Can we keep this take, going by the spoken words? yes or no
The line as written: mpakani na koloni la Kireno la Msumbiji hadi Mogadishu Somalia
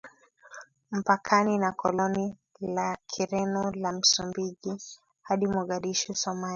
yes